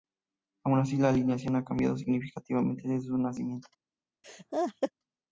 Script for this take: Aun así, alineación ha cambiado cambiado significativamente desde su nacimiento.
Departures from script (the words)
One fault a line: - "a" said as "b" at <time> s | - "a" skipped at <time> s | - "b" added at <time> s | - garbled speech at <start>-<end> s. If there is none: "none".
- "la" added at 1.0 s
- "cambiado" skipped at 1.9 s